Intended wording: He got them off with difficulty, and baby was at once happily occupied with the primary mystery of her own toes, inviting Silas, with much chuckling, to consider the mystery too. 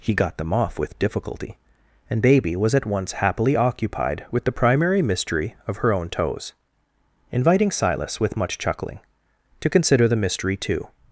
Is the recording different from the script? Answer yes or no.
no